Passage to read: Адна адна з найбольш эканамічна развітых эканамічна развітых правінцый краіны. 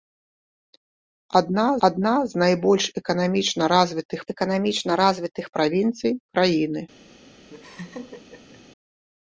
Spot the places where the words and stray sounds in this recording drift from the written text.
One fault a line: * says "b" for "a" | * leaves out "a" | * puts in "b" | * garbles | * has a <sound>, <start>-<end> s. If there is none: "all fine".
* has a laugh, 7.5-8.6 s